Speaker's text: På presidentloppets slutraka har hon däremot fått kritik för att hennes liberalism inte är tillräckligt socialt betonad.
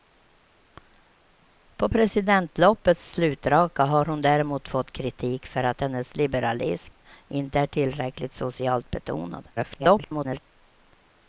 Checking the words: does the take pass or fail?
fail